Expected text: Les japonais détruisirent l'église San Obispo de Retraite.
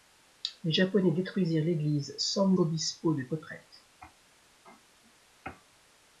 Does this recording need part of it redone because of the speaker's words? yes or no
no